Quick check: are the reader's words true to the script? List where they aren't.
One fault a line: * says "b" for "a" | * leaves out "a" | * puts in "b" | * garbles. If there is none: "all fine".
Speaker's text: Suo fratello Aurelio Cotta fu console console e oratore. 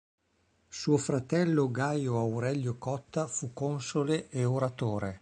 * puts in "Gaio"
* leaves out "console"